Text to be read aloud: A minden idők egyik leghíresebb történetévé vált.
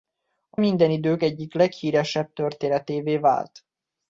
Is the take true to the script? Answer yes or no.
yes